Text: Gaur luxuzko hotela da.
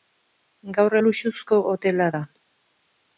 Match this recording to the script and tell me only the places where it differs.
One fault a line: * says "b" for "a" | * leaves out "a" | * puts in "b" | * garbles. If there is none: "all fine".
all fine